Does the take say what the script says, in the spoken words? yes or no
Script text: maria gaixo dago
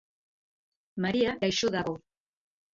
yes